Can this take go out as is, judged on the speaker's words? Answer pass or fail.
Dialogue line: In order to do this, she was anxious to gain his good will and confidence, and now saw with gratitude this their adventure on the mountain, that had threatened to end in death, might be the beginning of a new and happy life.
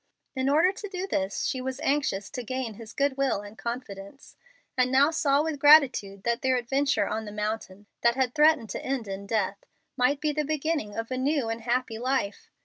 fail